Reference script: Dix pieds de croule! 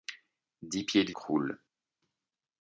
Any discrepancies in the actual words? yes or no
no